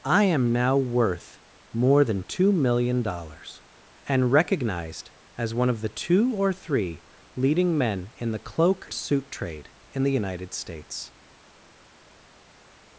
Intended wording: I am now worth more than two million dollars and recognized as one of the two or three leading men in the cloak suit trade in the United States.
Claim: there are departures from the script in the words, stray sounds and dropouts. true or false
false